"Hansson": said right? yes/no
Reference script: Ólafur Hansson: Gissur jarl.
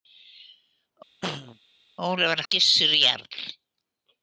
no